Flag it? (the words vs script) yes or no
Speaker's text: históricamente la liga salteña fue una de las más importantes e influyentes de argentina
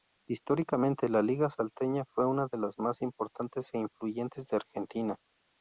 no